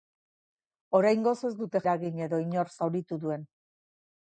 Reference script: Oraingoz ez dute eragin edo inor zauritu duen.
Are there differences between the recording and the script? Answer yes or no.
no